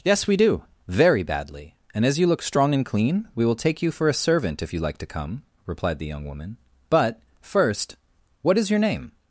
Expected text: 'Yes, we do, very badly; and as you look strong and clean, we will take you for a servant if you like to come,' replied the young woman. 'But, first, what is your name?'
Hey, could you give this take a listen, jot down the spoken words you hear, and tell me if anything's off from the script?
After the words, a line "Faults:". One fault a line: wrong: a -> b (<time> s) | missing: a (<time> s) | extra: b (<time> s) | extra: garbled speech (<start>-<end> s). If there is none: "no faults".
'Yes, we do, very badly; and as you look strong and clean, we will take you for a servant if you like to come,' replied the young woman. 'But, first, what is your name?'
Faults:
no faults